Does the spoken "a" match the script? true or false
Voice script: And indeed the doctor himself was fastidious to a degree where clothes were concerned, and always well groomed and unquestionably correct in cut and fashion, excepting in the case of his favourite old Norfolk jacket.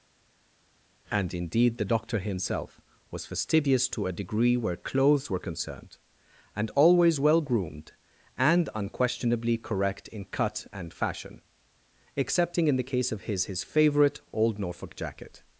true